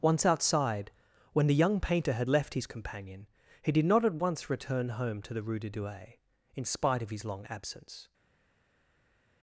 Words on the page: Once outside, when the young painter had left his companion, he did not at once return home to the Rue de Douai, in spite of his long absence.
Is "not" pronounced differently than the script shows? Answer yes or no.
no